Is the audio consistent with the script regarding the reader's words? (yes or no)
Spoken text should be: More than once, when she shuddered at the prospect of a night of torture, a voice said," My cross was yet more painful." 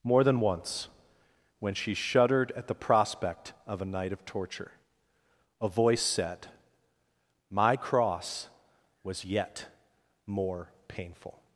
yes